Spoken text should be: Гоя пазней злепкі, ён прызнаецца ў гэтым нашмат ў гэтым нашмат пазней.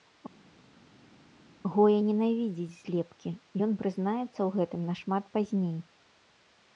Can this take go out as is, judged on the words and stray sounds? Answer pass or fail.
fail